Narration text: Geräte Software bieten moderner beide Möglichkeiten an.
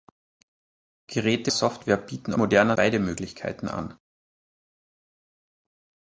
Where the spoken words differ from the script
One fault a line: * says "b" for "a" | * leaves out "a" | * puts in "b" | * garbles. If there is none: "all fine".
all fine